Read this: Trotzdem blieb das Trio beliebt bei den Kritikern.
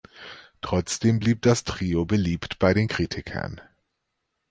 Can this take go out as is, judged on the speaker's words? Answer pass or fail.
pass